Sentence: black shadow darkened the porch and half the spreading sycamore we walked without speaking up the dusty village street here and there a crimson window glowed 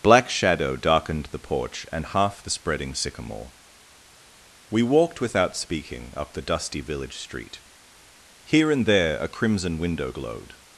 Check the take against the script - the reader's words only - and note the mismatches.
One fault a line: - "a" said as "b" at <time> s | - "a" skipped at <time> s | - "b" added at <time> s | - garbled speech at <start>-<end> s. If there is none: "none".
none